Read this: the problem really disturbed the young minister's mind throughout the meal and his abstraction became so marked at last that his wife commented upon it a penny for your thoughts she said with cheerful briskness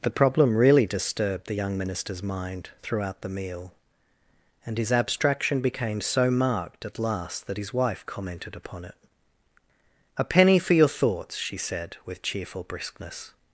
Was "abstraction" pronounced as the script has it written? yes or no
yes